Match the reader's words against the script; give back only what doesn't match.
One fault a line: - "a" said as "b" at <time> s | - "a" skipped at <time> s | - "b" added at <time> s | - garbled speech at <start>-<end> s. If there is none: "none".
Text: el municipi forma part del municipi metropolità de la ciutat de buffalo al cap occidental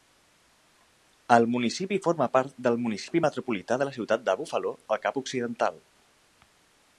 none